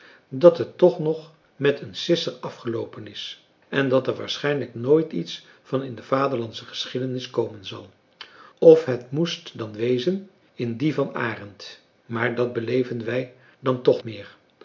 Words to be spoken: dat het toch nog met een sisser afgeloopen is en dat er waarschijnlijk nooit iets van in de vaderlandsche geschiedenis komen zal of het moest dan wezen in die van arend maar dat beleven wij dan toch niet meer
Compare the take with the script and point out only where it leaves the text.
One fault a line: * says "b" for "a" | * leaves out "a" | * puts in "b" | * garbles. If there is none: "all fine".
* leaves out "niet"